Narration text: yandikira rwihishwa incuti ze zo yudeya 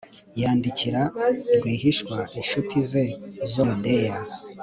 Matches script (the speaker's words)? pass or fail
pass